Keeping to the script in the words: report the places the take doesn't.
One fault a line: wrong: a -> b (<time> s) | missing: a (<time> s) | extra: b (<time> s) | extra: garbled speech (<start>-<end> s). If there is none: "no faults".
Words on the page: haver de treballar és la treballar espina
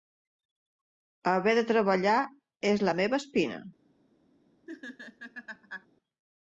wrong: treballar -> meva (3.0 s)